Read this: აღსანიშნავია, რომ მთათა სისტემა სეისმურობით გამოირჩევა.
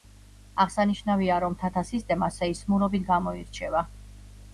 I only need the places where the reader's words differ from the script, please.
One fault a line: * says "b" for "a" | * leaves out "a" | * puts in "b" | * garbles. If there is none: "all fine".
all fine